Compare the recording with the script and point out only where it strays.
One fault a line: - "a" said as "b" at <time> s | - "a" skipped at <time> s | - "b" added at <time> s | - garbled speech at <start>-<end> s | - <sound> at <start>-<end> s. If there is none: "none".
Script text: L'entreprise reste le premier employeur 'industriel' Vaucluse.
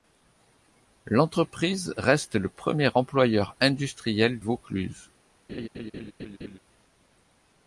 - laugh at 5.5-6.6 s